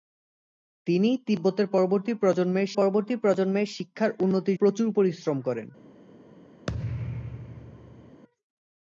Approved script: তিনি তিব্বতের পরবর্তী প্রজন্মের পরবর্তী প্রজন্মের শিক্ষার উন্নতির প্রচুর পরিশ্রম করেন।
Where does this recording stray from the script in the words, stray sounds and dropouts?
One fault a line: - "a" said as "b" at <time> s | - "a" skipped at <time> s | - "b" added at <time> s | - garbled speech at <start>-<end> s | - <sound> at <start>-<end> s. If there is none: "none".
- thud at 6.7-8.2 s